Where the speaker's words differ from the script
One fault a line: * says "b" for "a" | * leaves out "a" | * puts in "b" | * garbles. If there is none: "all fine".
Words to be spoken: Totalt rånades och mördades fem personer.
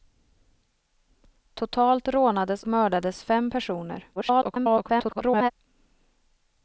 * leaves out "och"
* garbles